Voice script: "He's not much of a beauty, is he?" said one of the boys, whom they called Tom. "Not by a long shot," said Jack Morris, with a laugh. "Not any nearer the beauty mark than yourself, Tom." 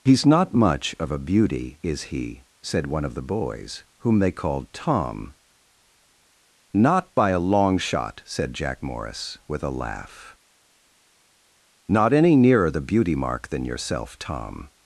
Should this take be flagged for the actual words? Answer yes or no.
no